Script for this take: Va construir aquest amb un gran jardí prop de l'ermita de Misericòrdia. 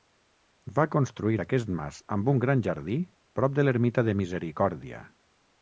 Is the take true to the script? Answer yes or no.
no